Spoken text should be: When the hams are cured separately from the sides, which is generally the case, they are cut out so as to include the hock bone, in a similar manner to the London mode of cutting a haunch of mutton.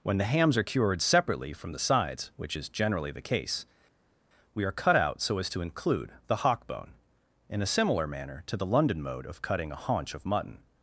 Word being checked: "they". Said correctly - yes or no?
no